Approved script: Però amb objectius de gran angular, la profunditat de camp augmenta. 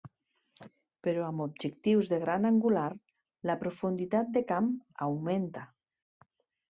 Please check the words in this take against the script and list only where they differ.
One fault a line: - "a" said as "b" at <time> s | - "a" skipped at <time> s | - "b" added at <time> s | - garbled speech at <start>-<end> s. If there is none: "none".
none